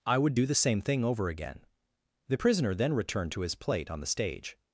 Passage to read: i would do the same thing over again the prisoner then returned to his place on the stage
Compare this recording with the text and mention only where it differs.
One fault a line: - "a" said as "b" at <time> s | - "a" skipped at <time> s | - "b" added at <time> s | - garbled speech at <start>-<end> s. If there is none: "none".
- "place" said as "plate" at 3.5 s